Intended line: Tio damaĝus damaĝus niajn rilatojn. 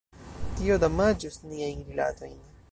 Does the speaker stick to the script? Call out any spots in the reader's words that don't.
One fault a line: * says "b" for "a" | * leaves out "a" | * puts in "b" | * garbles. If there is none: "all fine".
* leaves out "damaĝus"